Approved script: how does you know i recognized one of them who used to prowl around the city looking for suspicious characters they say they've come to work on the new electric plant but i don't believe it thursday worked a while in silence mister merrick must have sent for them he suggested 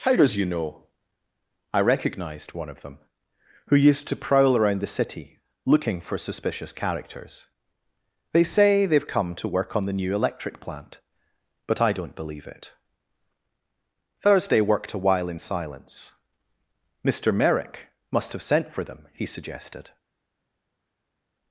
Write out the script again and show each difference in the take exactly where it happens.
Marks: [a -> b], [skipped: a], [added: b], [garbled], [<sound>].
how does you know i recognized one of them who used to prowl around the city looking for suspicious characters they say they've come to work on the new electric plant but i don't believe it thursday worked a while in silence mister merrick must have sent for them he suggested